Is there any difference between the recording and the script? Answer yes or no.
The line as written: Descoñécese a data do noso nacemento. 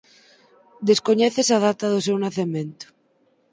yes